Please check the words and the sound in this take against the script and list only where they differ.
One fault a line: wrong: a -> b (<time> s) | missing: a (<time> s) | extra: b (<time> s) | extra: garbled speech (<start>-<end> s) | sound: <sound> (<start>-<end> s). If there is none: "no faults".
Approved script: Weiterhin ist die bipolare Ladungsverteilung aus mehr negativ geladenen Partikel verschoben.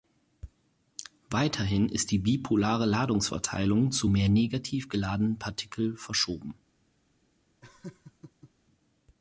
wrong: aus -> zu (3.9 s)
sound: laugh (7.6-8.5 s)